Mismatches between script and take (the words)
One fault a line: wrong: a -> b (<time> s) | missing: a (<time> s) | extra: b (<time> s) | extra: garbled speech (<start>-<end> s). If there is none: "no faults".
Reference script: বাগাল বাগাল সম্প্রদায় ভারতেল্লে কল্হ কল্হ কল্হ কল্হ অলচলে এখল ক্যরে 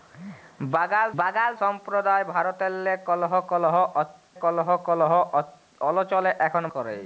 no faults